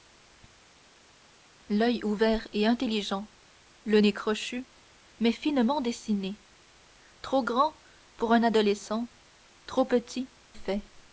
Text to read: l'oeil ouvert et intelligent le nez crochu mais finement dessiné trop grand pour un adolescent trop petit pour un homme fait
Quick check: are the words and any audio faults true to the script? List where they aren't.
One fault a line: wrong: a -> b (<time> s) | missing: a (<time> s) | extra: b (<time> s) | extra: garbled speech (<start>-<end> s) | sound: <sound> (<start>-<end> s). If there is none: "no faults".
missing: pour un homme (10.3 s)